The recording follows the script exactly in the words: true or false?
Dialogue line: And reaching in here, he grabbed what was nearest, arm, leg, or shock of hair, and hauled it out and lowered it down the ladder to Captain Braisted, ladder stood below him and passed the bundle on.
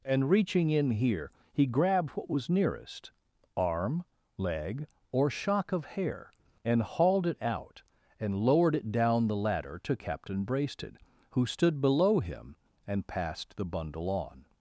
false